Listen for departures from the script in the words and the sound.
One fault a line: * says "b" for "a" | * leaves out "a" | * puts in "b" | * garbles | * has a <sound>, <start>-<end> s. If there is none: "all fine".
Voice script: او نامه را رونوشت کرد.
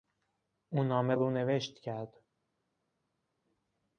* leaves out "را"